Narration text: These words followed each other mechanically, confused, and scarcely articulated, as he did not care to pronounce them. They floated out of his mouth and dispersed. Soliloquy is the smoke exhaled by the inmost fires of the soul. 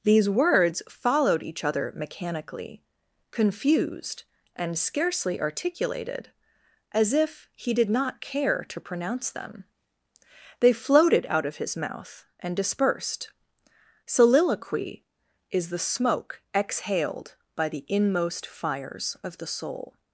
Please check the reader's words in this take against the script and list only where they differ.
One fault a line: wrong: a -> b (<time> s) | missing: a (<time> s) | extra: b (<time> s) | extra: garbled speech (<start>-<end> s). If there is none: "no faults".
extra: if (7.1 s)